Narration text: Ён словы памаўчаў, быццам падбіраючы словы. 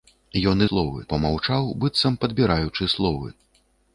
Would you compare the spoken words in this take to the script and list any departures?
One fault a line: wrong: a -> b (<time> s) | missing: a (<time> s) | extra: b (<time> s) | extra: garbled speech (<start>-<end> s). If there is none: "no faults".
no faults